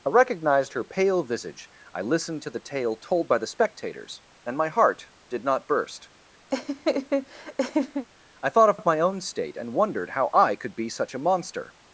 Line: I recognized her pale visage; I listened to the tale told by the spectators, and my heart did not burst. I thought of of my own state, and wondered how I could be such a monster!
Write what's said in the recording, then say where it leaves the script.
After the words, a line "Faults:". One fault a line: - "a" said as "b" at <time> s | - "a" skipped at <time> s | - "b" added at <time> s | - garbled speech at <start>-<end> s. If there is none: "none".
I recognized her pale visage; I listened to the tale told by the spectators, and my heart did not burst. I thought of of my own state, and wondered how I could be such a monster!
Faults:
none